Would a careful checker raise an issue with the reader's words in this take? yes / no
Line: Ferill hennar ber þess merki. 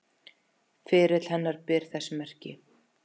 no